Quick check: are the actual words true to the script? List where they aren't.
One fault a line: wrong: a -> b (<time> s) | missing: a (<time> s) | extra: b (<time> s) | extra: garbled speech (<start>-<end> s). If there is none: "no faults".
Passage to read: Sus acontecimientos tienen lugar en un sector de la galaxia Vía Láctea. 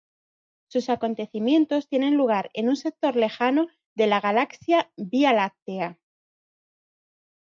extra: lejano (3.1 s)